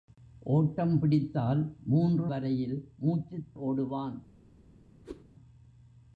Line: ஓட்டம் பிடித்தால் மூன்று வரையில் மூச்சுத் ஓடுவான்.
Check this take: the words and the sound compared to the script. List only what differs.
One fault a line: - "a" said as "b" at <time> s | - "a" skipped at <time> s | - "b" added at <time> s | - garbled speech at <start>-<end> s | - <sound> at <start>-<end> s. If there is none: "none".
- whoosh at 5.0-5.2 s